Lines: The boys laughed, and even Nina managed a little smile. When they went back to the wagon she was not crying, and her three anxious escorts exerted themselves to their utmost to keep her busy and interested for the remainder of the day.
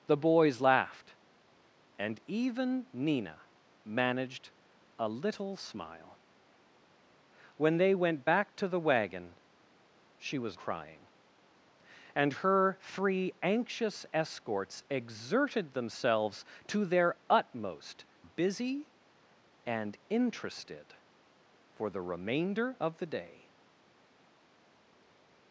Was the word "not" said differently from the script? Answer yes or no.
yes